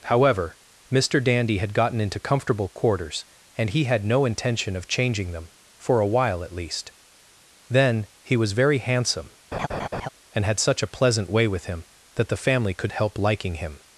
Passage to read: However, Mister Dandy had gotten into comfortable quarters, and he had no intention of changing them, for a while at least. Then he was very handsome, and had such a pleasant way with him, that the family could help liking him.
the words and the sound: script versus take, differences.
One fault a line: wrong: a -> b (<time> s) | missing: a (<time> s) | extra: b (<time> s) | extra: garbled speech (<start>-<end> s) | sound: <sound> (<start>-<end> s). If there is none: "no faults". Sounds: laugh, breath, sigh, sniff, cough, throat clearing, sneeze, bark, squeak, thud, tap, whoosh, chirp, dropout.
sound: laugh (9.5-10.1 s)